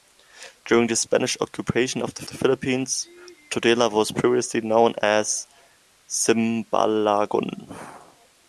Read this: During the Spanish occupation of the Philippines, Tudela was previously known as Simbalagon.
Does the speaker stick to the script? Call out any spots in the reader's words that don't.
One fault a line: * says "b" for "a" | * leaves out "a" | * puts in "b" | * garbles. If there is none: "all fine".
* puts in "the"